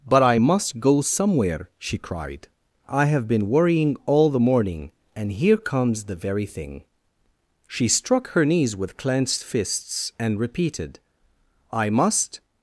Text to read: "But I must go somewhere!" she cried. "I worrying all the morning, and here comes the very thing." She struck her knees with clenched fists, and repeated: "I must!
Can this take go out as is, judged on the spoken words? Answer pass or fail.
fail